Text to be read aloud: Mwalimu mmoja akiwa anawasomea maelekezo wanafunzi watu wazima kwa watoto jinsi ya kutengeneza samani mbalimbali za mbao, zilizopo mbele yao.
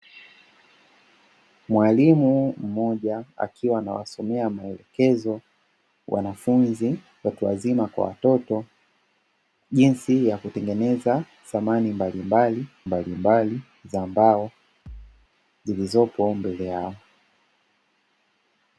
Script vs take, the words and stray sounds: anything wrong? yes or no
yes